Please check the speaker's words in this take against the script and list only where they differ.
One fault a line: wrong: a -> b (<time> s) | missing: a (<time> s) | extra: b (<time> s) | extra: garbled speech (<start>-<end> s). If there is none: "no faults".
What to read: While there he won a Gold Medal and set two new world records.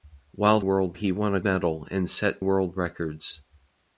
wrong: there -> world (0.6 s)
missing: Gold (1.4 s)
missing: two new (2.4 s)